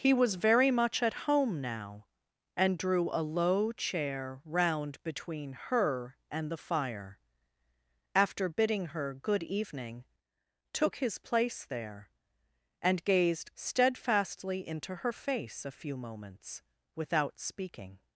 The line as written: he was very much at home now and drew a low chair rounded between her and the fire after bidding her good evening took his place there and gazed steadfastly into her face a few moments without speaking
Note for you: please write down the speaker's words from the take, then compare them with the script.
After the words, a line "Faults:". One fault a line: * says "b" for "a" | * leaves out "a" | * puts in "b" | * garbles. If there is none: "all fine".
he was very much at home now and drew a low chair round between her and the fire after bidding her good evening took his place there and gazed steadfastly into her face a few moments without speaking
Faults:
* says "round" for "rounded"